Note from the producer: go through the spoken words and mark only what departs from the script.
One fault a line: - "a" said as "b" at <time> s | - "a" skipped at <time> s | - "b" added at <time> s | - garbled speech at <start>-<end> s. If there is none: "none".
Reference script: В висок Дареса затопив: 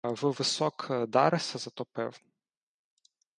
none